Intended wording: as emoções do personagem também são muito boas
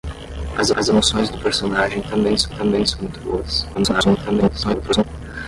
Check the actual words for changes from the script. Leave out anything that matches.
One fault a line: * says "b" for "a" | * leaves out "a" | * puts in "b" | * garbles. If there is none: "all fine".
* puts in "as"
* puts in "também são"
* garbles